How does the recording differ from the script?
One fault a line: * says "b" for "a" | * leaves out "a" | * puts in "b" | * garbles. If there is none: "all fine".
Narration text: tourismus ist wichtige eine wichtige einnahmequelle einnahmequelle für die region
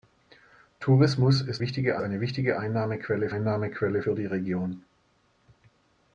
all fine